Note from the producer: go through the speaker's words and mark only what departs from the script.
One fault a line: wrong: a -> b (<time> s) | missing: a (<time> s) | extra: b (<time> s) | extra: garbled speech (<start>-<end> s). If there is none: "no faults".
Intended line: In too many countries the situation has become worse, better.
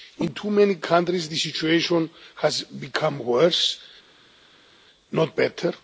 extra: not (5.1 s)